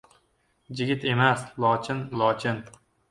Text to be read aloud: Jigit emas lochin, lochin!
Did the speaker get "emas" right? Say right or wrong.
right